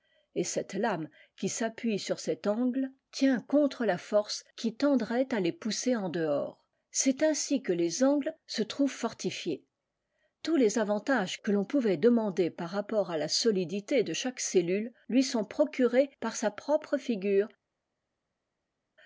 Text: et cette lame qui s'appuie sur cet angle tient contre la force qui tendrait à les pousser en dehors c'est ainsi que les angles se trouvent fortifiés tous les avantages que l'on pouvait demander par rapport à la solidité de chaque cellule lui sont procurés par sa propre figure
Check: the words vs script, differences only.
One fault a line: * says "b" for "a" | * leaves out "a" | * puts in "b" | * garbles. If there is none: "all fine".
all fine